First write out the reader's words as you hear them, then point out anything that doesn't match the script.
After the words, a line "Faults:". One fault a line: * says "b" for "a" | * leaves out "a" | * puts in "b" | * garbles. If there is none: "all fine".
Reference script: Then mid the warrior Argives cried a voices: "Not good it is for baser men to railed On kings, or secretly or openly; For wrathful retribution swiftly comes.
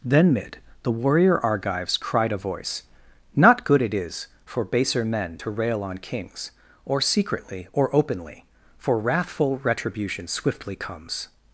Then mid the warrior Argives cried a voice: "Not good it is for baser men to rail On kings, or secretly or openly; For wrathful retribution swiftly comes.
Faults:
* says "voice" for "voices"
* says "rail" for "railed"